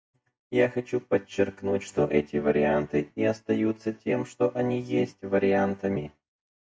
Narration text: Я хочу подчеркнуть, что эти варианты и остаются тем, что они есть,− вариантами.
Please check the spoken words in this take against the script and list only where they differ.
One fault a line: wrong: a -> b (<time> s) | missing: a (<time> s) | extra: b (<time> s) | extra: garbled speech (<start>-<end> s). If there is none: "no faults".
no faults